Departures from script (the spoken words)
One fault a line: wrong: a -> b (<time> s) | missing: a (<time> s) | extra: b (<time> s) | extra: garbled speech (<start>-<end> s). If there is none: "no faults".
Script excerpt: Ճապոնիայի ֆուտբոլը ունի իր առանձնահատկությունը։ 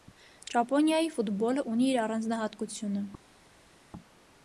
no faults